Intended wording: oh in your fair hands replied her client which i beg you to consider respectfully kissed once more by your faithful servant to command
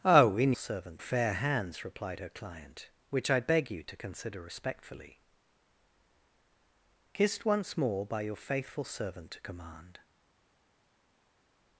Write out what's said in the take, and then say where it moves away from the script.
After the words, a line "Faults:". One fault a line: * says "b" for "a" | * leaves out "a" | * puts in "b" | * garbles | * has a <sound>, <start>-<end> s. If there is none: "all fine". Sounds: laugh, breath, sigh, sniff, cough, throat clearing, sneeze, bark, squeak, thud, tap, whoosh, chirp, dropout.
oh in servant fair hands replied her client which i beg you to consider respectfully kissed once more by your faithful servant to command
Faults:
* says "servant" for "your"